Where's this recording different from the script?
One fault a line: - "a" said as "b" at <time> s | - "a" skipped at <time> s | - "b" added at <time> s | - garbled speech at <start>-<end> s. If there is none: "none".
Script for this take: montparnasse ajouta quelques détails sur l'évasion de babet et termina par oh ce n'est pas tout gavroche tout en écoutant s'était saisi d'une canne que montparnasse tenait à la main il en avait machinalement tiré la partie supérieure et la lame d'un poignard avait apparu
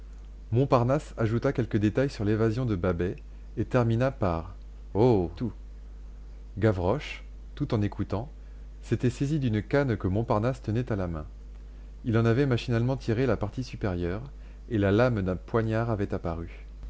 - "ce n'est pas" skipped at 5.3 s